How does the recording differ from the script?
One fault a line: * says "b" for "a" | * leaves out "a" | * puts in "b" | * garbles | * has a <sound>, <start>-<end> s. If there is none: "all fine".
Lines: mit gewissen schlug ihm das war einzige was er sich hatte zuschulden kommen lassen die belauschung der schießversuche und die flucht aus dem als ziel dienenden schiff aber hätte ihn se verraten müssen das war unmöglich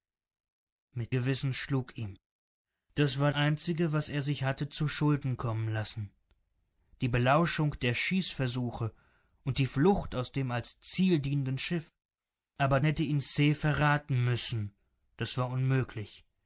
all fine